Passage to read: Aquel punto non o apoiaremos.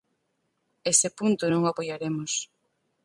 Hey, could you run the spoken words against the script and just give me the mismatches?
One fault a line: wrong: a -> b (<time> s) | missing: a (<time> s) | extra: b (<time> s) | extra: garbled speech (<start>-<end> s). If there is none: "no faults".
wrong: Aquel -> Ese (0.9 s)